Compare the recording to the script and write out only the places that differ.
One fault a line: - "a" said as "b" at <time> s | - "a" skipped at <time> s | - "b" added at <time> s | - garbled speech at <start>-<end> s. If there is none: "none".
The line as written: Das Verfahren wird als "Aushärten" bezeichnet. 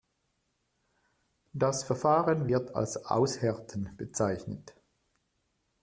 none